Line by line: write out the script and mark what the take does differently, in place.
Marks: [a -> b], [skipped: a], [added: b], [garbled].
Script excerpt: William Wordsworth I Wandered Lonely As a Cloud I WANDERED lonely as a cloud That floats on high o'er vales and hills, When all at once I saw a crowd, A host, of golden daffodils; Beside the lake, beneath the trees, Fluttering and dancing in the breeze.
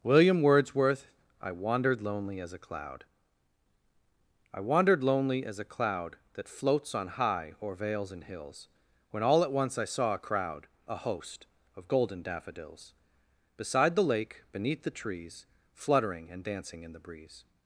William Wordsworth I Wandered Lonely As a Cloud I WANDERED lonely as a cloud That floats on high o'er vales and hills, When all at once I saw a crowd, A host, of golden daffodils; Beside the lake, beneath the trees, Fluttering and dancing in the breeze.